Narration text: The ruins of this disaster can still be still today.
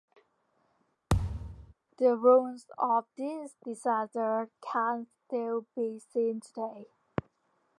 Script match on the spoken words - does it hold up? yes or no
no